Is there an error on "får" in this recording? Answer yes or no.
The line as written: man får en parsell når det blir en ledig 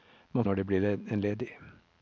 yes